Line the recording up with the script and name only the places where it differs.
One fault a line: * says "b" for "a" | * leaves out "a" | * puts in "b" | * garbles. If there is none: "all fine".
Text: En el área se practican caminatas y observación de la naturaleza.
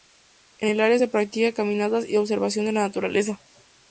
all fine